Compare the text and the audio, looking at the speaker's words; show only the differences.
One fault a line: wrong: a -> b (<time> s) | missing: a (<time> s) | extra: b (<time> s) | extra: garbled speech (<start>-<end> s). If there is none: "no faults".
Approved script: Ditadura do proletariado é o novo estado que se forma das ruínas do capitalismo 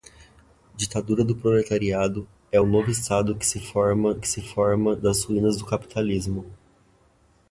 extra: que se forma (4.2 s)